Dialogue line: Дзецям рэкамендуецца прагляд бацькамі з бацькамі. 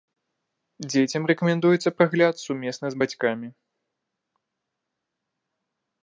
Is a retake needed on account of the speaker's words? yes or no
yes